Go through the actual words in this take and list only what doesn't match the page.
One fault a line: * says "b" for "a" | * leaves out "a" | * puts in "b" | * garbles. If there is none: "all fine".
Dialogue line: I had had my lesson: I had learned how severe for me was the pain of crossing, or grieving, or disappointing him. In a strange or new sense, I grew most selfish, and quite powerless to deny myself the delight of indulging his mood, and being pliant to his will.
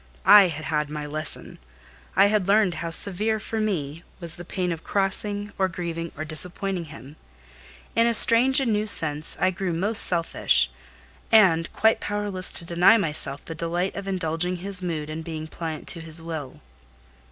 * says "and" for "or"